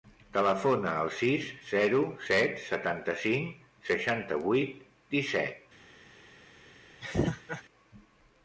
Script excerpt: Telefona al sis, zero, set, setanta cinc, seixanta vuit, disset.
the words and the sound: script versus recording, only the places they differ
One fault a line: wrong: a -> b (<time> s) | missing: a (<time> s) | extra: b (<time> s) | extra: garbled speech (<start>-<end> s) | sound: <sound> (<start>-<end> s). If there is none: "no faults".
sound: laugh (7.0-7.6 s)